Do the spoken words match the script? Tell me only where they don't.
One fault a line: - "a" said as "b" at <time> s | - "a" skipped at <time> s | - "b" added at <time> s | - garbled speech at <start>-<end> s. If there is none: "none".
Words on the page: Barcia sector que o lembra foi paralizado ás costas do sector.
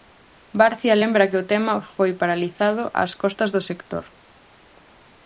- "sector" said as "lembra" at 1.0 s
- "lembra" said as "tema" at 1.5 s